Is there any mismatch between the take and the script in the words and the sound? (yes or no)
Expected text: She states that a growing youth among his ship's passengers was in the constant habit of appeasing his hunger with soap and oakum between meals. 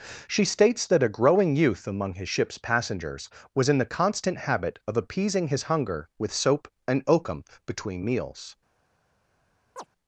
yes